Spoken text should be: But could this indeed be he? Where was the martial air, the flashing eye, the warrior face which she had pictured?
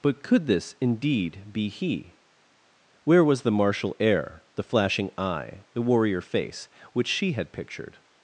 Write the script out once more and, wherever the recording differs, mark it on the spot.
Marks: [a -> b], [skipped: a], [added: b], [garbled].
But could this indeed be he? Where was the martial air, the flashing eye, the warrior face which she had pictured?